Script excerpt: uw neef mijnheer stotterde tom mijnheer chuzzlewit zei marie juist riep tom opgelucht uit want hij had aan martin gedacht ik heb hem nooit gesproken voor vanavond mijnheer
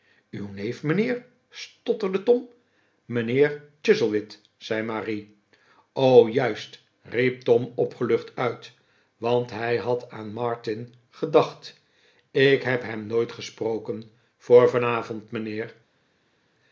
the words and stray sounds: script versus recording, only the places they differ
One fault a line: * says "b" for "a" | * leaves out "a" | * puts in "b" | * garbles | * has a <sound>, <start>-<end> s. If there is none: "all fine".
all fine